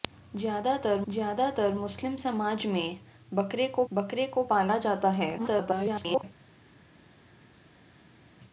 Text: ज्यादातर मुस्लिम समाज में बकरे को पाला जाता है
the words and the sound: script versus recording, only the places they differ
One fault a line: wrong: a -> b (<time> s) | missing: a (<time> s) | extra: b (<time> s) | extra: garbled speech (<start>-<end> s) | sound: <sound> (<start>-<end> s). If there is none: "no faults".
extra: ज्यादातर (1.1 s)
extra: बकरे को (3.9 s)
extra: garbled speech (5.4-6.2 s)